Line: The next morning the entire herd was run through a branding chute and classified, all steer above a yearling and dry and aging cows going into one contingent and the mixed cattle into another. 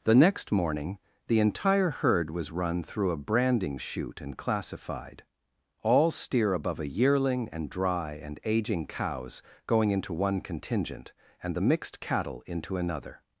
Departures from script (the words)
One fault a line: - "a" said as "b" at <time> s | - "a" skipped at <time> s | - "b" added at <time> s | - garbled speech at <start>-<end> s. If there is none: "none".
none